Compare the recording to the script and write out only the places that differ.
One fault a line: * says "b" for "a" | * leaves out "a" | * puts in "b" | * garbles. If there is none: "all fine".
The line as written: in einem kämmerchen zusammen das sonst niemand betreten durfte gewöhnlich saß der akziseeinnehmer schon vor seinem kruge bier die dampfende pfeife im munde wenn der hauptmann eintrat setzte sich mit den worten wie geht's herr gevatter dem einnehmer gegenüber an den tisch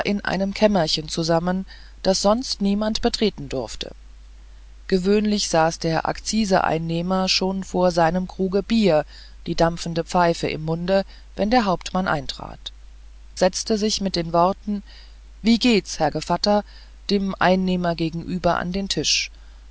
all fine